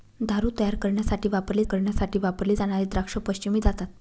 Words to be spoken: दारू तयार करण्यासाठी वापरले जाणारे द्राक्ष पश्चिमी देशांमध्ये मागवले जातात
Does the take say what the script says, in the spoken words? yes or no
no